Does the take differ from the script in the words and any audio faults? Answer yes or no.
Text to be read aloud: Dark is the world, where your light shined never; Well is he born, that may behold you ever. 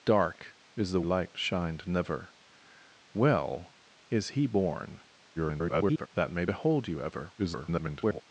yes